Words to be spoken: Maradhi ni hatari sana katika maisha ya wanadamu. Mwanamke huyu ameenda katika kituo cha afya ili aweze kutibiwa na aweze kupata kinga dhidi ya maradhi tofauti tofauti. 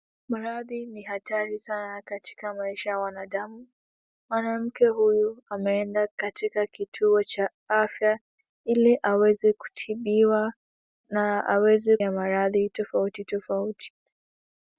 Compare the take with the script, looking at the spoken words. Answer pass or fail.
fail